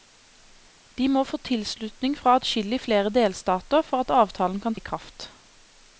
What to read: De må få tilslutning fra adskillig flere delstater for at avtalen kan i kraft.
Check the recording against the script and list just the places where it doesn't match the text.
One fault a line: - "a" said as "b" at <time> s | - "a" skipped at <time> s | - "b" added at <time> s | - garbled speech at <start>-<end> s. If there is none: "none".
none